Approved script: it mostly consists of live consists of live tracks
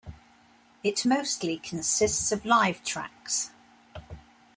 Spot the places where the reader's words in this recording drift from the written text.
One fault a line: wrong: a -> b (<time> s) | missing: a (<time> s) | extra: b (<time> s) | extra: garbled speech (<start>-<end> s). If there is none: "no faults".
missing: consists of live (2.8 s)